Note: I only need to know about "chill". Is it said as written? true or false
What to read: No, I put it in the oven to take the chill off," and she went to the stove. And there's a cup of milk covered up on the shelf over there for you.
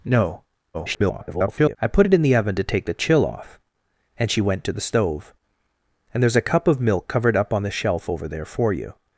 true